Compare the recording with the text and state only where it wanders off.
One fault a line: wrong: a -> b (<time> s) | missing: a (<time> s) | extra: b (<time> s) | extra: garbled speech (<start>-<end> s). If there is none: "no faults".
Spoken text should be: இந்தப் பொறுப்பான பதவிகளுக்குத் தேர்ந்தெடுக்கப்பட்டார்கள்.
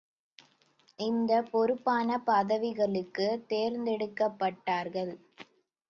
no faults